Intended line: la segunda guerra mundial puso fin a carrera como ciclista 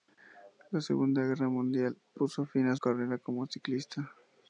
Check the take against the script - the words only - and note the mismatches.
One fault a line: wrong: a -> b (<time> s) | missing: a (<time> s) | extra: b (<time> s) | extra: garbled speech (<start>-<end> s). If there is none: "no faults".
no faults